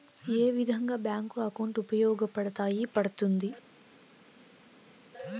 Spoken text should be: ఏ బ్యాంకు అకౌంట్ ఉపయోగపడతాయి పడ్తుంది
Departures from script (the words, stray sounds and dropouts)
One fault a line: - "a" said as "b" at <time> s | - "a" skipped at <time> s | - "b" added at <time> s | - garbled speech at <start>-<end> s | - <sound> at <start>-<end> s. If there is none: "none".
- "విధంగా" added at 0.5 s